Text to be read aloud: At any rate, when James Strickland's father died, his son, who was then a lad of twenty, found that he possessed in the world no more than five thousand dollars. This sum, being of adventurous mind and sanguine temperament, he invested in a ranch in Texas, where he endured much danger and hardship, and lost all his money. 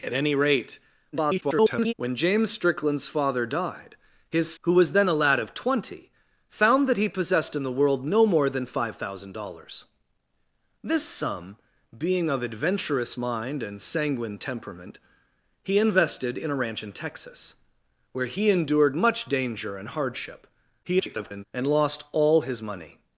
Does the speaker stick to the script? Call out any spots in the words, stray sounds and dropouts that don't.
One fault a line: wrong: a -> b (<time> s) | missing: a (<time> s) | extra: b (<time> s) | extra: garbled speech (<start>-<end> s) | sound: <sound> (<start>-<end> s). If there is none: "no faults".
extra: garbled speech (1.1-1.9 s)
missing: son (4.5 s)
extra: garbled speech (20.8-21.4 s)